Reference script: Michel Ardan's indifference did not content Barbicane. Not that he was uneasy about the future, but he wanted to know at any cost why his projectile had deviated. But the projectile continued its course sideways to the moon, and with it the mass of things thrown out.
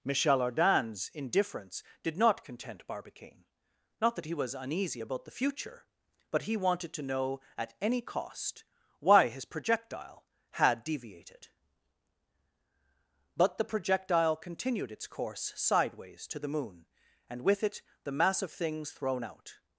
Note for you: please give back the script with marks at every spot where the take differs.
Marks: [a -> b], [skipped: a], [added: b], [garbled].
Michel Ardan's indifference did not content Barbicane. Not that he was uneasy about the future, but he wanted to know at any cost why his projectile had deviated. But the projectile continued its course sideways to the moon, and with it the mass of things thrown out.